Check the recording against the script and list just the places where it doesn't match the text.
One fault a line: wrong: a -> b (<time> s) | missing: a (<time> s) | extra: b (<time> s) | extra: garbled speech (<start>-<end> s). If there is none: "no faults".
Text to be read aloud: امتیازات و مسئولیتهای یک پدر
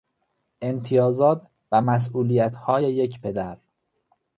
no faults